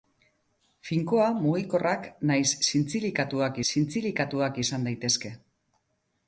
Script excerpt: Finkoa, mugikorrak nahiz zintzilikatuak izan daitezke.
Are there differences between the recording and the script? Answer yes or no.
yes